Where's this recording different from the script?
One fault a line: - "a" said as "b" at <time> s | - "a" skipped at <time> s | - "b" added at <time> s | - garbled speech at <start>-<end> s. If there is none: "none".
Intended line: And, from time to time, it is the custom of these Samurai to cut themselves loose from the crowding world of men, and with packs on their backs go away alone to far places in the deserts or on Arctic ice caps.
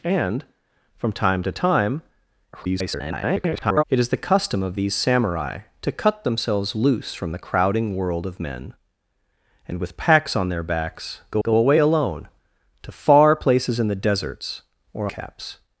- garbled speech at 2.5-3.8 s
- "go" added at 11.4 s
- "on Arctic ice" skipped at 15.1 s